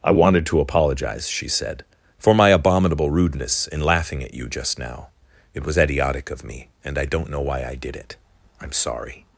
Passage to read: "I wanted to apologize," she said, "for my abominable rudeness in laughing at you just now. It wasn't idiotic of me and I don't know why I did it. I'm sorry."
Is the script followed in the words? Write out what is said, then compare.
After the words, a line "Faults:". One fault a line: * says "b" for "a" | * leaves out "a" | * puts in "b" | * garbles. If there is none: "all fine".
"I wanted to apologize," she said, "for my abominable rudeness in laughing at you just now. It was idiotic of me and I don't know why I did it. I'm sorry."
Faults:
* says "was" for "wasn't"